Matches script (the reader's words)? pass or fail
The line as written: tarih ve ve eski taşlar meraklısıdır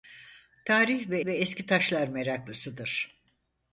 pass